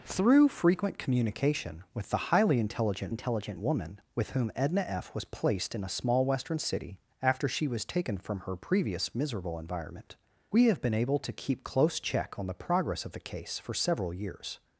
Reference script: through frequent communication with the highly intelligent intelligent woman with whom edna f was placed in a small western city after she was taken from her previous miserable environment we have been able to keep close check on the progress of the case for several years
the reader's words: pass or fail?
pass